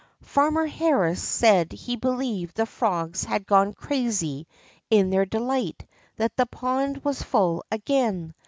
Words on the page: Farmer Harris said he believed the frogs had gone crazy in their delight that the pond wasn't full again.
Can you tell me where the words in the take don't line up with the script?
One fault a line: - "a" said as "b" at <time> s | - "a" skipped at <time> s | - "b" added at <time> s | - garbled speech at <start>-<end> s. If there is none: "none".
- "wasn't" said as "was" at 7.0 s